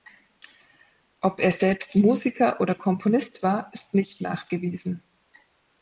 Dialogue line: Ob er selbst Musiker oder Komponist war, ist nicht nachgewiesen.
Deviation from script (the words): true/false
false